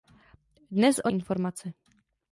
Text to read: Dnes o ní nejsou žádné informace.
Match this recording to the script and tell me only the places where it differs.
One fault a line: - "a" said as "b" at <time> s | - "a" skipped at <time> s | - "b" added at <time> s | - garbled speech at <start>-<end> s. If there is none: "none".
- "ní nejsou žádné" skipped at 1.1 s